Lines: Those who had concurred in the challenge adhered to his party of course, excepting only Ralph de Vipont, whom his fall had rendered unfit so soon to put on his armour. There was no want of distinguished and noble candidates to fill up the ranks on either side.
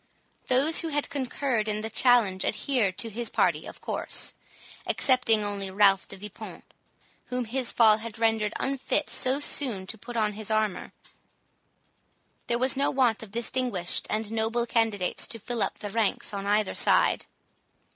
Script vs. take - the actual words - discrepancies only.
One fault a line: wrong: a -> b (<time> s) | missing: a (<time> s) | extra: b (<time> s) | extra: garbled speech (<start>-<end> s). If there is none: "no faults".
no faults